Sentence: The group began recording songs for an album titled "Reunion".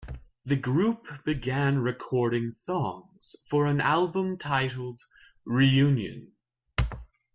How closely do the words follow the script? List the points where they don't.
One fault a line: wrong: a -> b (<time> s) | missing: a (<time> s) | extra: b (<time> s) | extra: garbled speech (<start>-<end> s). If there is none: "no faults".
no faults